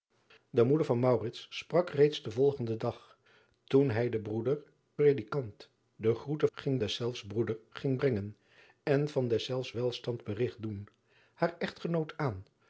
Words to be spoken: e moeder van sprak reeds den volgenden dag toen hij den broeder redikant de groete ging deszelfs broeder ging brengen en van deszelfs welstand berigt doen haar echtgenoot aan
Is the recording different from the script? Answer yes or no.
no